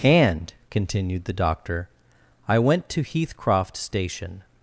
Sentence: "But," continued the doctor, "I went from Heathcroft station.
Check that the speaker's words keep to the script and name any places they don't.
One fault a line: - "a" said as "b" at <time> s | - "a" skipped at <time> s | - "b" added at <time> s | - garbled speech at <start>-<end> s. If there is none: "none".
- "But" said as "And" at 0.0 s
- "from" said as "to" at 2.9 s